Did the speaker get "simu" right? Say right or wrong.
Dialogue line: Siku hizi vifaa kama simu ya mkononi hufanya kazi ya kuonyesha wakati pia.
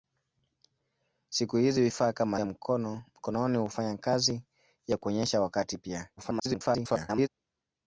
wrong